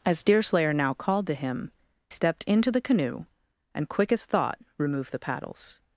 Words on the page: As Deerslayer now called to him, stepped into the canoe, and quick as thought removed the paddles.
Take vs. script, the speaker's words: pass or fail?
pass